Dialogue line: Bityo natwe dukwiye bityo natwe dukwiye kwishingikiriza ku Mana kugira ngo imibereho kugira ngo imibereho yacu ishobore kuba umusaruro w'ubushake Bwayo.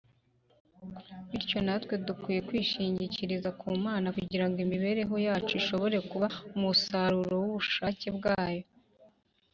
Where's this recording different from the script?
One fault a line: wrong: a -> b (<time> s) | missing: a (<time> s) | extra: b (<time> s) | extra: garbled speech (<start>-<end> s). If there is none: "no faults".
missing: bityo natwe dukwiye (2.4 s)
missing: kugira ngo imibereho (5.1 s)